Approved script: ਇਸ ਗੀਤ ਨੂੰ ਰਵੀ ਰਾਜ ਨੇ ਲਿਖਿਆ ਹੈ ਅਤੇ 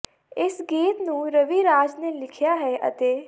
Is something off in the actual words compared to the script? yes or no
no